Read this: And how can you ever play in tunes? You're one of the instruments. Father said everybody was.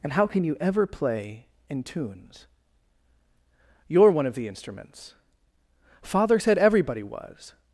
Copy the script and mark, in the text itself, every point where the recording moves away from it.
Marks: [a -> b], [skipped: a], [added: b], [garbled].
And how can you ever play in tunes? You're one of the instruments. Father said everybody was.